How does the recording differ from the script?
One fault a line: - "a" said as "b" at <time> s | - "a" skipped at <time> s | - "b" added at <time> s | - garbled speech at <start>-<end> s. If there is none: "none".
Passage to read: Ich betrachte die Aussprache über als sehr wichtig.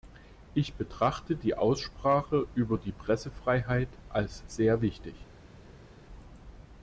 - "die Pressefreiheit" added at 2.8 s